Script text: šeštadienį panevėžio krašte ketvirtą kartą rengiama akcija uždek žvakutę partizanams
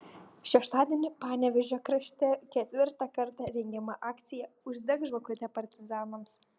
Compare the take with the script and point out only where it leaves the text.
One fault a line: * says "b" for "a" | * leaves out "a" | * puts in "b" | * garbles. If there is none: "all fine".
all fine